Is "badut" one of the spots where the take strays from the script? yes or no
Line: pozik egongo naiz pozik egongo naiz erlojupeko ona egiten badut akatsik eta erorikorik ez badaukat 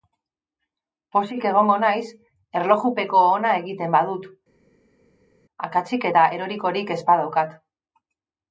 no